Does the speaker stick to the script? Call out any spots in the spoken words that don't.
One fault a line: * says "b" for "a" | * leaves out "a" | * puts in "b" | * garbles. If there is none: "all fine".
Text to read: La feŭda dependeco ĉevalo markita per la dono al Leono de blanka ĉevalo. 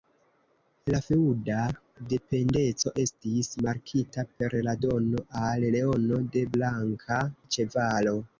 * says "estis" for "ĉevalo"